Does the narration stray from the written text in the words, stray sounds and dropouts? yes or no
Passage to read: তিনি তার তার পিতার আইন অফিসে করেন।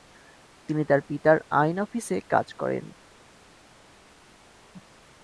yes